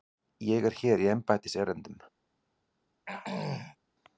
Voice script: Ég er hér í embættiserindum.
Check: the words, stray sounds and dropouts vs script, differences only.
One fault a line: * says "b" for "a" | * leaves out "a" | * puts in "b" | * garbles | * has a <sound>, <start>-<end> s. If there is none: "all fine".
* has a throat clearing, 3.1-3.8 s